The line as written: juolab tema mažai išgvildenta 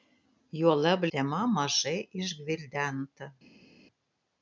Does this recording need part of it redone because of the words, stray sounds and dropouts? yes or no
no